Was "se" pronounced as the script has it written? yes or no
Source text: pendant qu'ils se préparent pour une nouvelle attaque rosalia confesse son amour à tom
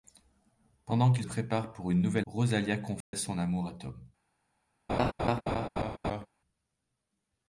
no